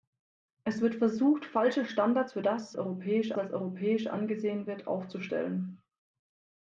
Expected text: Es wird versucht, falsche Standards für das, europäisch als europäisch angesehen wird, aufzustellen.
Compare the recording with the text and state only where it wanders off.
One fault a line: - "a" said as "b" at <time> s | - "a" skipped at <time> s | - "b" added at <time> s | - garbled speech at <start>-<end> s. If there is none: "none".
none